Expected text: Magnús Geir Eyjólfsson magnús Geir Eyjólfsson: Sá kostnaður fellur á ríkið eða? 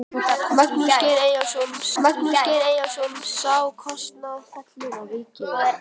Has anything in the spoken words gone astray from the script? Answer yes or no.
no